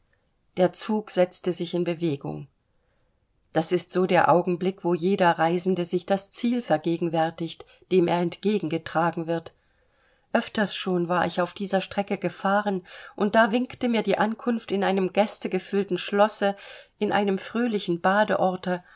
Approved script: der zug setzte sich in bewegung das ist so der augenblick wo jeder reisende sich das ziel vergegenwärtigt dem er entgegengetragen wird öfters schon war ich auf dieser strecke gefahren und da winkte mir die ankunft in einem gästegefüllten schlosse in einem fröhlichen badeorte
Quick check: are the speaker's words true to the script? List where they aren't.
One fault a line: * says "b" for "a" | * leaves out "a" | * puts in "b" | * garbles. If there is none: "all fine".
all fine